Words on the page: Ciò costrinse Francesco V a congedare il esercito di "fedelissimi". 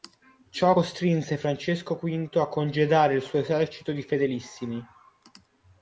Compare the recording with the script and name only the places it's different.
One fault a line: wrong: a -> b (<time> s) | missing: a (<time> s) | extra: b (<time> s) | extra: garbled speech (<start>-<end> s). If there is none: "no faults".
extra: suo (3.2 s)